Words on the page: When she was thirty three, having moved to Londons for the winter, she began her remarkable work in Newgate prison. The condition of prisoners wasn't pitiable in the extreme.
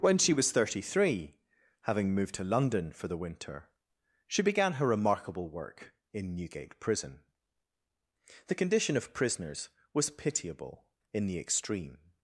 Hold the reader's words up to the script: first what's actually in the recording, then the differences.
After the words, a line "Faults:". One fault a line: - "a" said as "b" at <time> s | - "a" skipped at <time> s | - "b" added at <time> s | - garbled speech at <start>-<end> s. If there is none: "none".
When she was thirty three, having moved to London for the winter, she began her remarkable work in Newgate prison. The condition of prisoners was pitiable in the extreme.
Faults:
- "Londons" said as "London" at 2.4 s
- "wasn't" said as "was" at 9.9 s